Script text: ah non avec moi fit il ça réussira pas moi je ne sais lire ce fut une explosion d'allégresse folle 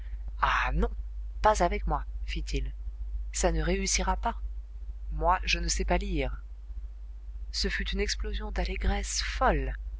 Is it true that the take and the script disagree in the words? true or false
true